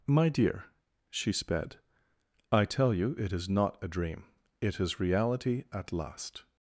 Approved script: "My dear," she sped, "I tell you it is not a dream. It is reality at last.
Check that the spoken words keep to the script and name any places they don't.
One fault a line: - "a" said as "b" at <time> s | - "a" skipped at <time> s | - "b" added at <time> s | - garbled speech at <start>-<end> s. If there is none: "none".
none